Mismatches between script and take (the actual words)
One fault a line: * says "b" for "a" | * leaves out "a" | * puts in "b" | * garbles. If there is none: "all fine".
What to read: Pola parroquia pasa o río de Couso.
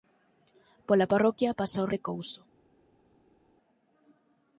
* leaves out "río"